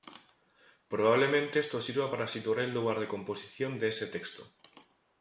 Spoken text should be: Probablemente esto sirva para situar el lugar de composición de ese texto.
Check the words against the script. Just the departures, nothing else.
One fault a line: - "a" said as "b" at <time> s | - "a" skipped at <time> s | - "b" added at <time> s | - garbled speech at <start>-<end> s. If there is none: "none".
none